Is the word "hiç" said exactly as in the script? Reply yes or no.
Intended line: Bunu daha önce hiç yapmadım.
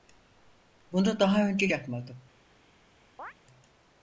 no